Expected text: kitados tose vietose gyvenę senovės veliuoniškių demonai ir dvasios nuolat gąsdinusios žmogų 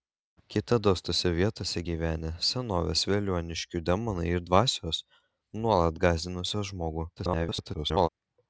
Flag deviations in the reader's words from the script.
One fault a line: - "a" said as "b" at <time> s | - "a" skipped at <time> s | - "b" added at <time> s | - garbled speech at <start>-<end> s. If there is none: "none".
- garbled speech at 7.2-8.1 s